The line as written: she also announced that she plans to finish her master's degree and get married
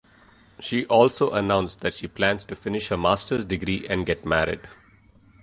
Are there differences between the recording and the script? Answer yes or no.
no